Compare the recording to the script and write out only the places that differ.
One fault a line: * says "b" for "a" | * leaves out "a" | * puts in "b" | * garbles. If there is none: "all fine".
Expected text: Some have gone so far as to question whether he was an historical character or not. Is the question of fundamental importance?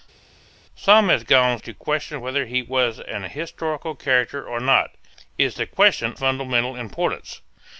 * leaves out "so far as"
* leaves out "of"